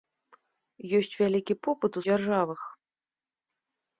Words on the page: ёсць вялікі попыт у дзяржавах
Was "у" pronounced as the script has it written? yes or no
yes